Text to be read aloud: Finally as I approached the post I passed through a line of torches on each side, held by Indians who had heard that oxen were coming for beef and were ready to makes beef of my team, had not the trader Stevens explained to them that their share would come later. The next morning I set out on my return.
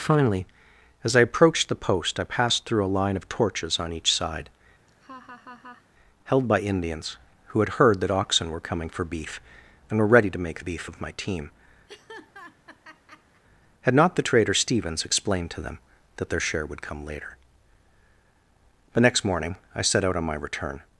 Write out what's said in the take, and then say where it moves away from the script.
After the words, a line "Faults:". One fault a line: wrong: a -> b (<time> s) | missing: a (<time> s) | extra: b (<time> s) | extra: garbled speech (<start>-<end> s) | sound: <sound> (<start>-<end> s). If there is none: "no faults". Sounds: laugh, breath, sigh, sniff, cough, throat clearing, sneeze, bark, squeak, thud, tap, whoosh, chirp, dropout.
Finally as I approached the post I passed through a line of torches on each side, held by Indians who had heard that oxen were coming for beef and were ready to make beef of my team, had not the trader Stevens explained to them that their share would come later. The next morning I set out on my return.
Faults:
sound: laugh (4.9-5.9 s)
wrong: makes -> make (10.4 s)
sound: laugh (11.9-13.4 s)